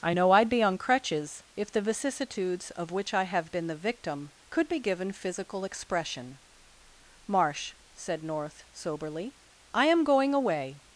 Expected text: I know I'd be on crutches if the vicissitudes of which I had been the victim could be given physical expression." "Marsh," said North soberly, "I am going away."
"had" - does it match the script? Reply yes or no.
no